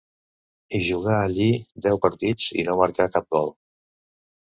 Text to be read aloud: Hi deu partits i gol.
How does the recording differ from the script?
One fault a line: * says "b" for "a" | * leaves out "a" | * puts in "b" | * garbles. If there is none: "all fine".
* puts in "jugà allí"
* puts in "no marcà cap"